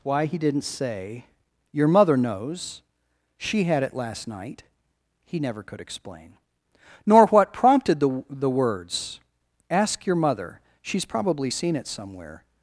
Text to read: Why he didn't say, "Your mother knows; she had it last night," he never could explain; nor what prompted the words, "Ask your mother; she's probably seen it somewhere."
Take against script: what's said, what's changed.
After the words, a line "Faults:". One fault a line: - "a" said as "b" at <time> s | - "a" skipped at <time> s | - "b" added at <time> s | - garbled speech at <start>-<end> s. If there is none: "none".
Why he didn't say, "Your mother knows; she had it last night," he never could explain; nor what prompted the the words, "Ask your mother; she's probably seen it somewhere."
Faults:
- "the" added at 8.3 s